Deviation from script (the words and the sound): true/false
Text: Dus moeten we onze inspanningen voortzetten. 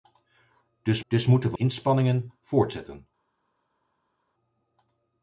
true